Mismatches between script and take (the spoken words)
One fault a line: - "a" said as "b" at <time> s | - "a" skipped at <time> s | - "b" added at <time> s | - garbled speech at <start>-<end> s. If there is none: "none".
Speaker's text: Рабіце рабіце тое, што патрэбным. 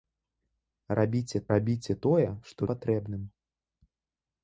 none